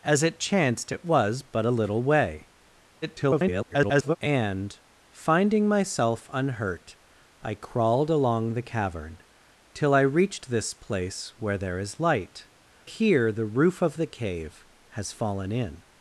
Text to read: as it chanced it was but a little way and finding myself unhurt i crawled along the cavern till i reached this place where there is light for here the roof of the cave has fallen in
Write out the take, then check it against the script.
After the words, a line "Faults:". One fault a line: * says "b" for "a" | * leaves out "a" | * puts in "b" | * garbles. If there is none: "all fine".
as it chanced it was but a little way [garbled] and finding myself unhurt i crawled along the cavern till i reached this place where there is light here the roof of the cave has fallen in
Faults:
* garbles
* leaves out "for"